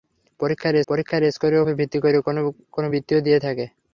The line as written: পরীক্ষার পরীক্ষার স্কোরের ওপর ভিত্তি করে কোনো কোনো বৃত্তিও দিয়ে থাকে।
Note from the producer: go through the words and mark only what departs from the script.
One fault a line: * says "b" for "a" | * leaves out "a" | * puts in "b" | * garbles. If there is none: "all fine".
all fine